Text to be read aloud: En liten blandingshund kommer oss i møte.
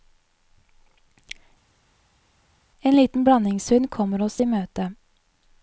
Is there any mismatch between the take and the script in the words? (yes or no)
no